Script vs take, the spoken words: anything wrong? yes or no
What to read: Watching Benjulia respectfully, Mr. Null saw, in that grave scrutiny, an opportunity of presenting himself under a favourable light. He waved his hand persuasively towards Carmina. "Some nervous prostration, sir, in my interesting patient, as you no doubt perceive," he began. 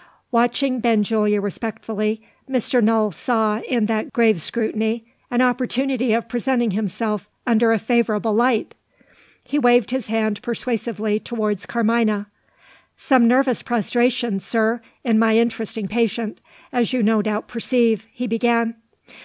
no